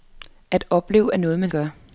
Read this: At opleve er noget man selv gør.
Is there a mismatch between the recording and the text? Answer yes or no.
yes